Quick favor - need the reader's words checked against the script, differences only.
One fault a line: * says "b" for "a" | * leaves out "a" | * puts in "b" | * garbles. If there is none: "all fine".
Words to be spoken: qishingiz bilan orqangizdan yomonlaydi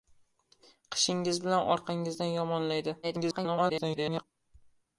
* garbles